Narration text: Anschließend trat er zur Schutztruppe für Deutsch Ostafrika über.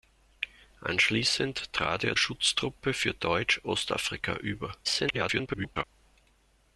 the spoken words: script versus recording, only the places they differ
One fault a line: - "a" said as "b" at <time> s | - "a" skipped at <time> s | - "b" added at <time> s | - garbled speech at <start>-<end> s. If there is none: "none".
- "zur" skipped at 2.2 s
- garbled speech at 4.8-5.8 s